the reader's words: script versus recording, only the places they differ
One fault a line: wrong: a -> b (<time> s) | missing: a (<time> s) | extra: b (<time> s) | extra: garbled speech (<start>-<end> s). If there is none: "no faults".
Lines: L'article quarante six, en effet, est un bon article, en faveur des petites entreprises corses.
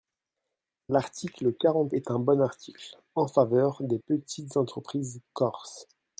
missing: six en effet (1.9 s)